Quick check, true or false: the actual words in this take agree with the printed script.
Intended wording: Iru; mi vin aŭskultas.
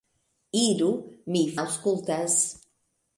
false